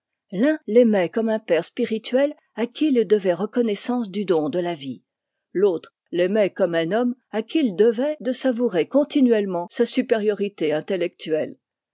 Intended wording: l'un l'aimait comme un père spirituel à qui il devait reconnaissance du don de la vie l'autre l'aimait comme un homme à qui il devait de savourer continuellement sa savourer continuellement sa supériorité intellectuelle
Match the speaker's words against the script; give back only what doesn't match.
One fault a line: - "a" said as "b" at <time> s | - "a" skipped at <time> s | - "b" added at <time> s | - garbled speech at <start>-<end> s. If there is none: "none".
- "savourer continuellement sa" skipped at 9.9 s